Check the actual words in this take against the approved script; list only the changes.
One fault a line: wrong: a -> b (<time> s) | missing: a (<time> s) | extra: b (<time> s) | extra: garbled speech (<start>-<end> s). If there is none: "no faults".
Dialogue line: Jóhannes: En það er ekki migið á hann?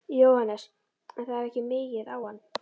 no faults